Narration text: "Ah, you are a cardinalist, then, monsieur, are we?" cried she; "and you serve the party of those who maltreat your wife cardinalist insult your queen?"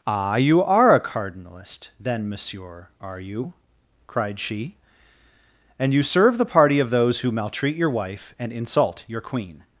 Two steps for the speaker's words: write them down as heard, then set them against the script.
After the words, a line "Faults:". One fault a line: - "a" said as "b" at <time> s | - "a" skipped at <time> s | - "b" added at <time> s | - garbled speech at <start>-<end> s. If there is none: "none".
"Ah, you are a cardinalist, then, monsieur, are you?" cried she; "and you serve the party of those who maltreat your wife and insult your queen?"
Faults:
- "we" said as "you" at 3.2 s
- "cardinalist" said as "and" at 8.4 s